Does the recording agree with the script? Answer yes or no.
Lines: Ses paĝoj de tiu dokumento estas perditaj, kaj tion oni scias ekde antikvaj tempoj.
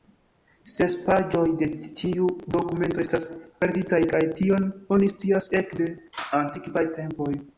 yes